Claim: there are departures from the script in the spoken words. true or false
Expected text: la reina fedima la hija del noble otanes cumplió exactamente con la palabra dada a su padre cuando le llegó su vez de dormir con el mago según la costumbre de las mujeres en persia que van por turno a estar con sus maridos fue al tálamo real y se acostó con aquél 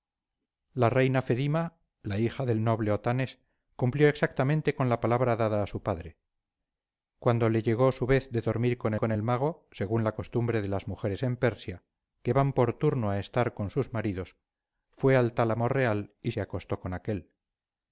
true